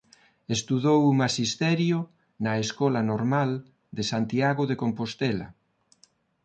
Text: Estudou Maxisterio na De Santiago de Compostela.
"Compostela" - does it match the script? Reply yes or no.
yes